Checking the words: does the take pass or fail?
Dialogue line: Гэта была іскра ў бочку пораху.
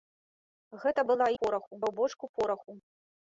fail